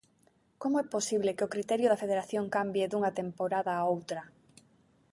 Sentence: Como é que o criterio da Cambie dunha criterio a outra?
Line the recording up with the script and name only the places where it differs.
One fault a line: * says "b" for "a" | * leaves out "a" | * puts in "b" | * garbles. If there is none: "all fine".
* puts in "posible"
* puts in "Federación"
* says "temporada" for "criterio"